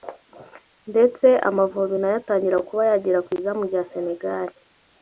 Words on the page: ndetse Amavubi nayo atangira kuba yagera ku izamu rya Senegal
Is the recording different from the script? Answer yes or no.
no